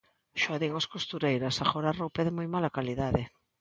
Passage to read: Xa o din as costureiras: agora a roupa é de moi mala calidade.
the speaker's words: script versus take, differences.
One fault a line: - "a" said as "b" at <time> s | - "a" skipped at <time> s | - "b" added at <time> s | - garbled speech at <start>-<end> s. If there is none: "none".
none